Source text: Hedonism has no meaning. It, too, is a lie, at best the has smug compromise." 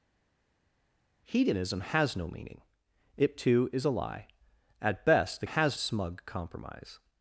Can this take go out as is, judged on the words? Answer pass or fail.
pass